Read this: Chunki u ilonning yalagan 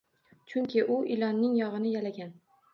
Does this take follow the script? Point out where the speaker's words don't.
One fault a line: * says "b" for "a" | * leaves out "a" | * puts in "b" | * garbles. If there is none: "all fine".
* puts in "yog`ini"